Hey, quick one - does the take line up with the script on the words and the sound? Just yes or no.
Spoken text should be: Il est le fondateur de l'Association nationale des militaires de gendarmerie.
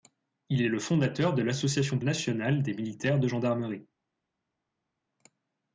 yes